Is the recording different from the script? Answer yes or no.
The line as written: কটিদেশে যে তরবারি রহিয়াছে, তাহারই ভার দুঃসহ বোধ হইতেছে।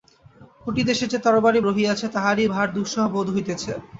no